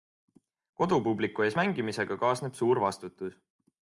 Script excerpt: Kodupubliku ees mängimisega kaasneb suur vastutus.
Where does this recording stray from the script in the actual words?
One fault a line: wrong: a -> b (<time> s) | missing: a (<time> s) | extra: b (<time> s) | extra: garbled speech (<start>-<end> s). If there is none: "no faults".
no faults